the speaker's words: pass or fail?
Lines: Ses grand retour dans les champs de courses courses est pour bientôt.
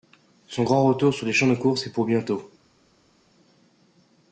fail